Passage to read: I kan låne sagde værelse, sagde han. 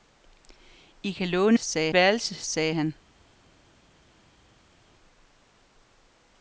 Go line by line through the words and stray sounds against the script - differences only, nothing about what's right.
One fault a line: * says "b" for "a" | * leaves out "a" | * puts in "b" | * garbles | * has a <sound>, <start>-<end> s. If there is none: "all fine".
all fine